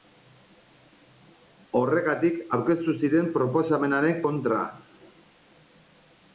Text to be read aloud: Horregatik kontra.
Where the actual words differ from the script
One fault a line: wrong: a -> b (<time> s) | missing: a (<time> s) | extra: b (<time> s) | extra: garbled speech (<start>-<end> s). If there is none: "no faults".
extra: aurkeztu ziren proposamenaren (2.6 s)